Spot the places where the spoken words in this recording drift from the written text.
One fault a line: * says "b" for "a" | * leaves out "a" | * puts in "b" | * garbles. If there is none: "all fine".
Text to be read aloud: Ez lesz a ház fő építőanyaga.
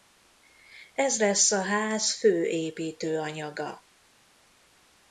all fine